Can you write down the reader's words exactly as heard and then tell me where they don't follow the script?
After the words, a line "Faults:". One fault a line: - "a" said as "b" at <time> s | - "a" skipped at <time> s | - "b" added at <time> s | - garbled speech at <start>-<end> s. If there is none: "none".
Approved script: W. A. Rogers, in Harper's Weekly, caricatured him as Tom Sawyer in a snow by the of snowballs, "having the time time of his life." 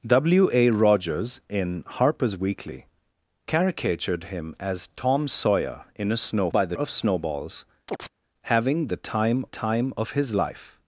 W. A. Rogers, in Harper's Weekly, caricatured him as Tom Sawyer in a snow by the of snowballs, "having the time time of his life."
Faults:
none